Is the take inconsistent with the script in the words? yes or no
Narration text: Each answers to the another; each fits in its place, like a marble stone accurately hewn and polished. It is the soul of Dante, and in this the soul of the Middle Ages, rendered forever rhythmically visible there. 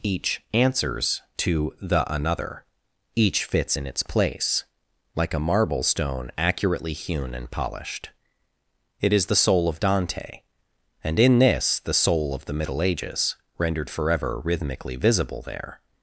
no